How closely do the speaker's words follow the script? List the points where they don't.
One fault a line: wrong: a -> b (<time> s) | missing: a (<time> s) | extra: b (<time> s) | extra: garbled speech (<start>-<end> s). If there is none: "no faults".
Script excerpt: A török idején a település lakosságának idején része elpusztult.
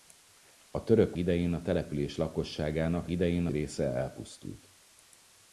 no faults